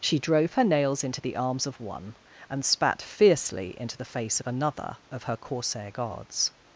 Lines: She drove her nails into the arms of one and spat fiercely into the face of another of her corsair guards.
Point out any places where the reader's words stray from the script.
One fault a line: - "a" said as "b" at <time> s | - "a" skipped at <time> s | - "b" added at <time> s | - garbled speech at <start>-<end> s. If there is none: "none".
none